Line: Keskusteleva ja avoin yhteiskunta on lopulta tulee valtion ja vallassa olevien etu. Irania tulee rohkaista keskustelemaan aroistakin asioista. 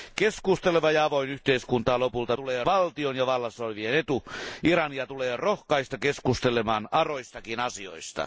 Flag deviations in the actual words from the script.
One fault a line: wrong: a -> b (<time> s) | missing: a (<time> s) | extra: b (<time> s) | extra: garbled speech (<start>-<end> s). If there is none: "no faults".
no faults